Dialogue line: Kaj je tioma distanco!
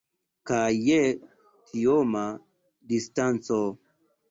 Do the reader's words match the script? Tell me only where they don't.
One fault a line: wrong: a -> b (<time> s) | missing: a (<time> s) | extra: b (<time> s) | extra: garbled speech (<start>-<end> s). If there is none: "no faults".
no faults